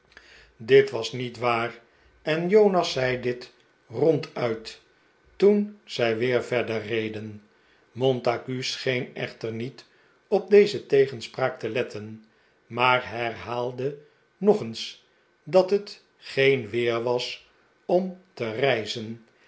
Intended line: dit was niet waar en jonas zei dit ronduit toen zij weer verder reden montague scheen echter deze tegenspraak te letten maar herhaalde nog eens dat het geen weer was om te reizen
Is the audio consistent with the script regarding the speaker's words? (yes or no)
no